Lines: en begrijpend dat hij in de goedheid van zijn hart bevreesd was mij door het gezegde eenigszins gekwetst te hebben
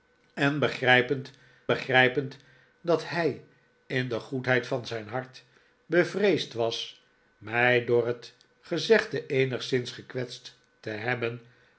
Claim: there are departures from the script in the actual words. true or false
true